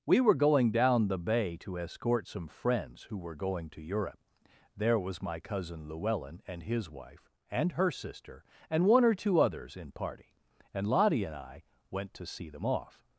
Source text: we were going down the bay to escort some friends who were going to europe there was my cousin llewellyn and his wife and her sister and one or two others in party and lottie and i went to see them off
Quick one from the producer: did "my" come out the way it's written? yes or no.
yes